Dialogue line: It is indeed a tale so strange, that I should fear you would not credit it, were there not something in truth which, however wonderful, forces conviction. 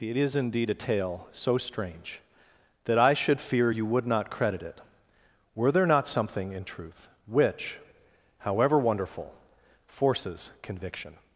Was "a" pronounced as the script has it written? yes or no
yes